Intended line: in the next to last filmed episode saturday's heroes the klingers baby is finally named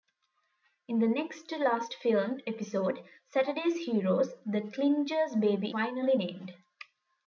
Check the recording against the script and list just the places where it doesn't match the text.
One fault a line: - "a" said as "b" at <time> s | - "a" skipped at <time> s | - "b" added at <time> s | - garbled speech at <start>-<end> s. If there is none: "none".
- "is" skipped at 5.8 s